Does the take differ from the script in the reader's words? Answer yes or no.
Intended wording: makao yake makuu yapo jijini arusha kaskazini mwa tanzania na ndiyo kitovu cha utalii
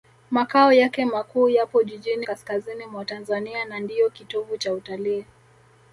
yes